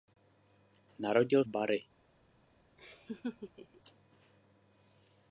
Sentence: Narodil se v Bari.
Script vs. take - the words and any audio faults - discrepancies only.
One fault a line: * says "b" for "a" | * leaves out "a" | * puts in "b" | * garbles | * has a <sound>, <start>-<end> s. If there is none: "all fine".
* leaves out "se"
* has a laugh, 2.8-3.8 s